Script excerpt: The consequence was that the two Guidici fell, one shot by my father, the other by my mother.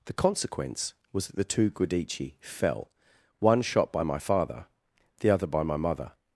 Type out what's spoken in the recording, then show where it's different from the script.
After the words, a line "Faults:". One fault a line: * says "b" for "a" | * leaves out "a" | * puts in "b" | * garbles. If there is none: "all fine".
The consequence was that the two Guidici fell, one shot by my father, the other by my mother.
Faults:
all fine